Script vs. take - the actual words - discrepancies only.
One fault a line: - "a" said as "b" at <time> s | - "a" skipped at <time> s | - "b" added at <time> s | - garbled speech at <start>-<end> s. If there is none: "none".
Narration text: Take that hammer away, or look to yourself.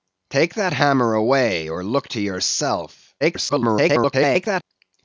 - garbled speech at 3.2-4.6 s